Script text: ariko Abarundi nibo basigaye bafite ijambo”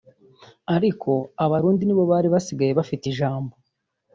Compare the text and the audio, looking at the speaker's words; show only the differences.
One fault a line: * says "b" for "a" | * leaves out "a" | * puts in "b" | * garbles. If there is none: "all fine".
* puts in "bari"